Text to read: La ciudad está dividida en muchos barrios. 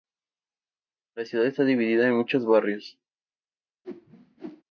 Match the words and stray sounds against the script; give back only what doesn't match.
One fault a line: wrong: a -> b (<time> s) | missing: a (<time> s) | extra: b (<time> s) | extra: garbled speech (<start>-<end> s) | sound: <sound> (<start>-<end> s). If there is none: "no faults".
sound: whoosh (3.8-4.6 s)